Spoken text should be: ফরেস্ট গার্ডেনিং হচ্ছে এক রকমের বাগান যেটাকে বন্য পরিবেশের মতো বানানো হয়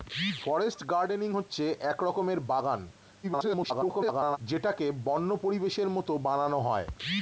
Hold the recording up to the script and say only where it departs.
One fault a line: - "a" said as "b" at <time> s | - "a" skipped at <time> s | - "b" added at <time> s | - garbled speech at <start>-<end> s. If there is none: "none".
- garbled speech at 3.2-4.4 s